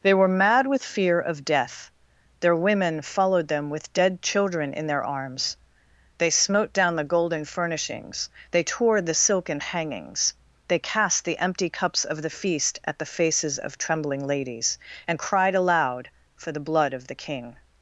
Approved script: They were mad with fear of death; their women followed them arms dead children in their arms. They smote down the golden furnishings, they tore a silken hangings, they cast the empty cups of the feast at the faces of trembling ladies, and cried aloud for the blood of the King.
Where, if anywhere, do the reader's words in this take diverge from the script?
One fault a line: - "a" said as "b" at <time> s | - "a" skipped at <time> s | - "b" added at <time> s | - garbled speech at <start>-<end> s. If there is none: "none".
- "arms" said as "with" at 3.7 s
- "a" said as "the" at 9.0 s